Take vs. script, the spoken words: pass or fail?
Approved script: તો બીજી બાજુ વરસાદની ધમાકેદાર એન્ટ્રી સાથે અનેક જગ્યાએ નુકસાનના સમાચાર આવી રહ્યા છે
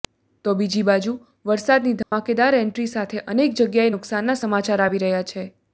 pass